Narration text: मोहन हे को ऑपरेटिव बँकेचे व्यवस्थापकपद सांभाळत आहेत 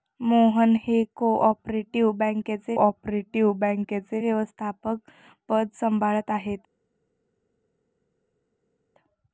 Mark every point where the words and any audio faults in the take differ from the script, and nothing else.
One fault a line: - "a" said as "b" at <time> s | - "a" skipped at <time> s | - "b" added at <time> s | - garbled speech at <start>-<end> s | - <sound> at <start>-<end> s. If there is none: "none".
- "ऑपरेटिव बँकेचे" added at 2.8 s